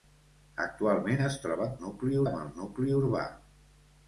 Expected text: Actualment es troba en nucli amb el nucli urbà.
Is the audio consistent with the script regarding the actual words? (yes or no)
yes